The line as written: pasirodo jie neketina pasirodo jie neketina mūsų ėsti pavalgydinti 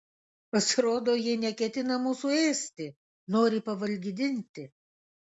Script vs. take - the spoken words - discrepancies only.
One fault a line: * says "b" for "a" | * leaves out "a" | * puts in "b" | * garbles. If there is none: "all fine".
* leaves out "pasirodo jie neketina"
* puts in "nori"